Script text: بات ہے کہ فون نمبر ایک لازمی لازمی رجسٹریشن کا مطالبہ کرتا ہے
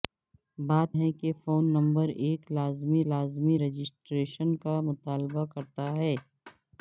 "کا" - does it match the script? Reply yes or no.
yes